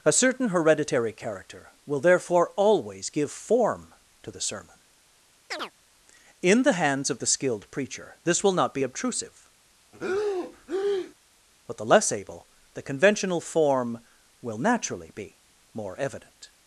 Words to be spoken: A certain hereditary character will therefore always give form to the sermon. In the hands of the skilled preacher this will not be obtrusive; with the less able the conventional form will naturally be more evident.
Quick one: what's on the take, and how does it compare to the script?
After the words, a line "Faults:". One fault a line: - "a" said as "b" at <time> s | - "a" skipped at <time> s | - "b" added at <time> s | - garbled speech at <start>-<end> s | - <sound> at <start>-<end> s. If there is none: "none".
A certain hereditary character will therefore always give form to the sermon. In the hands of the skilled preacher this will not be obtrusive; but the less able the conventional form will naturally be more evident.
Faults:
- chirp at 5.5-5.7 s
- breath at 9.9-11.1 s
- "with" said as "but" at 11.7 s